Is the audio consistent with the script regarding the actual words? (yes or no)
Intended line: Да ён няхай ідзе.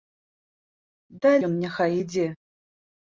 yes